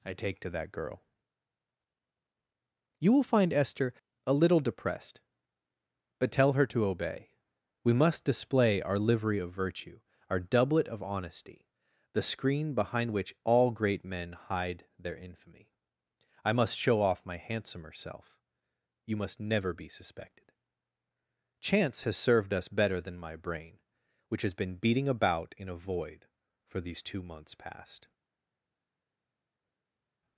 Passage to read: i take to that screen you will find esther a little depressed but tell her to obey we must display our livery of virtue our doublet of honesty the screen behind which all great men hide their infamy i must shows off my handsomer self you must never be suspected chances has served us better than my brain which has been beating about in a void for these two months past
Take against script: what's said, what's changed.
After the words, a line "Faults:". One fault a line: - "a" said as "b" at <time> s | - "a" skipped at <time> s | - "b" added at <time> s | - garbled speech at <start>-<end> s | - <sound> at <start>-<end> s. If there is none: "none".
i take to that girl you will find esther a little depressed but tell her to obey we must display our livery of virtue our doublet of honesty the screen behind which all great men hide their infamy i must show off my handsomer self you must never be suspected chance has served us better than my brain which has been beating about in a void for these two months past
Faults:
- "screen" said as "girl" at 0.7 s
- "shows" said as "show" at 16.8 s
- "chances" said as "chance" at 21.6 s